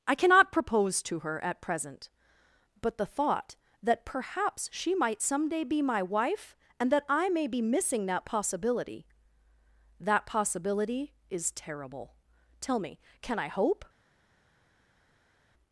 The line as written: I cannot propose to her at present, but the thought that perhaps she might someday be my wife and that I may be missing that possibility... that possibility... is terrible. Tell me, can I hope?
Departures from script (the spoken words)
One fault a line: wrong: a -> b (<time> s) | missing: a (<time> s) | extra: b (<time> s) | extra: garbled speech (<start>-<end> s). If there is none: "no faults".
no faults